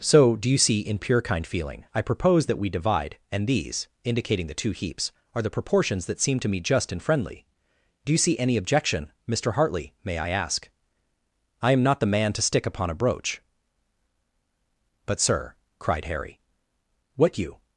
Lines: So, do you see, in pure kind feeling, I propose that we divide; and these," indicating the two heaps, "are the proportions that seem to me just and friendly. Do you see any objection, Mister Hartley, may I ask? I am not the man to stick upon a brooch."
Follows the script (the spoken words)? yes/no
no